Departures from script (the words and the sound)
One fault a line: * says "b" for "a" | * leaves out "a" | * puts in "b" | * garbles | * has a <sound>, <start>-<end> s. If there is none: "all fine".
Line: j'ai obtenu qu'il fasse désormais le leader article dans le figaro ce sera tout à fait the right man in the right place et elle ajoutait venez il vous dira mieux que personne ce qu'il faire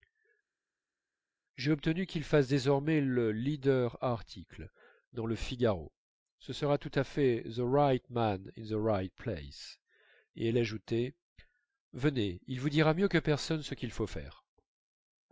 * puts in "faut"